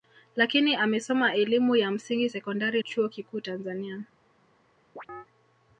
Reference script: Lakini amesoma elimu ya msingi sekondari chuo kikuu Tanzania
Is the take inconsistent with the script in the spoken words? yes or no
no